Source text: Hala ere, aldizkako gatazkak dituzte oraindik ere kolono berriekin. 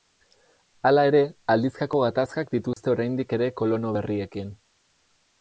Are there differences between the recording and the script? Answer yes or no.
no